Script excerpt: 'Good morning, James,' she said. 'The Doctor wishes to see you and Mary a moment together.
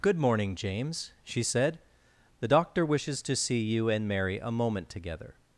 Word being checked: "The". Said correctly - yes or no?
yes